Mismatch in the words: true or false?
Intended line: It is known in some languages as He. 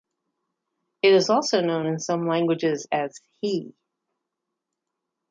true